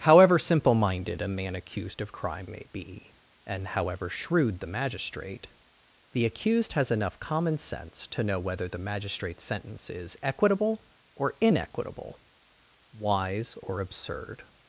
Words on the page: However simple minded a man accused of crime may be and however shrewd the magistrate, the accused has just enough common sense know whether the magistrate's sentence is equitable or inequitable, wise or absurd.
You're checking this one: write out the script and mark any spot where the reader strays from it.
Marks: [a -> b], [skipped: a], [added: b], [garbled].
However simple minded a man accused of crime may be and however shrewd the magistrate, the accused has [skipped: just] enough common sense [added: to] know whether the magistrate's sentence is equitable or inequitable, wise or absurd.